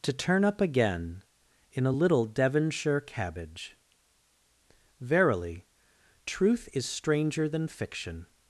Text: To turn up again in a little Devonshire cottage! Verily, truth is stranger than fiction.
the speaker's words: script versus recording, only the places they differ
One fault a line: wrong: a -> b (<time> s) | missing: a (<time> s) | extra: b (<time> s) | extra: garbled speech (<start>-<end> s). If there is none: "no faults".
wrong: cottage -> cabbage (3.0 s)